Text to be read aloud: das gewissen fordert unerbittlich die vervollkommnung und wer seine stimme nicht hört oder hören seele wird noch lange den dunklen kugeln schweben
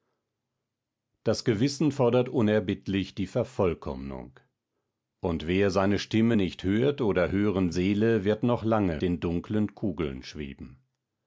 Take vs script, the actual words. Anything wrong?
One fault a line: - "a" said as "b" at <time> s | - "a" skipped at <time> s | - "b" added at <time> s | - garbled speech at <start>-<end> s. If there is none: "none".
none